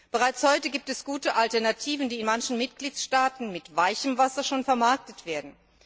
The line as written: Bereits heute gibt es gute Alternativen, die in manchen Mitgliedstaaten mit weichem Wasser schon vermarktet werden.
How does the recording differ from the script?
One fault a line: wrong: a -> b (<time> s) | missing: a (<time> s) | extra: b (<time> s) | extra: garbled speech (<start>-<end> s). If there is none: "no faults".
no faults